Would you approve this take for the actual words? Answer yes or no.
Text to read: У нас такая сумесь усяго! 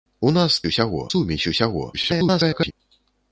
no